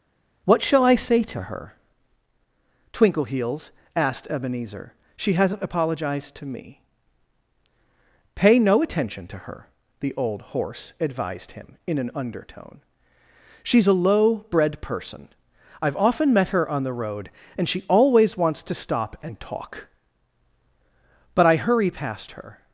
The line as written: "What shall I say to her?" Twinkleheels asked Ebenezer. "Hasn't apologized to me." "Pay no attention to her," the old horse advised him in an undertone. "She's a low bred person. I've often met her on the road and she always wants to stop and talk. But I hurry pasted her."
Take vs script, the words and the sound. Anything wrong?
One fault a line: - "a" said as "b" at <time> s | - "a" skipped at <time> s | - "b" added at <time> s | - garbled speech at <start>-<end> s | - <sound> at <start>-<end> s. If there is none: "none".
- "She" added at 5.2 s
- "pasted" said as "past" at 21.9 s